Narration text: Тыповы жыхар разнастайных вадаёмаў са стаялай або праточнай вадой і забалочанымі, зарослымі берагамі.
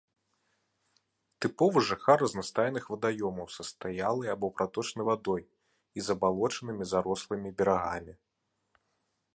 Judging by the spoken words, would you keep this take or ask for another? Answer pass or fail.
pass